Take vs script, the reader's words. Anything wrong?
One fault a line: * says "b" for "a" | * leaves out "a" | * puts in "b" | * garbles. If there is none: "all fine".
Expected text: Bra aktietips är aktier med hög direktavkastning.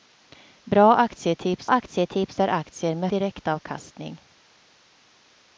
* puts in "aktietips"
* leaves out "hög"